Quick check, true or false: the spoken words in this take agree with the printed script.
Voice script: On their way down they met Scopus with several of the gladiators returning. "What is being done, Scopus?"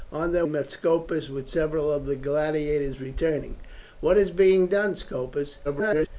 false